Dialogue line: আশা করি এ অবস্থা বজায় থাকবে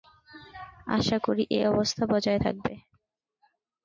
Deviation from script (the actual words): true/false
false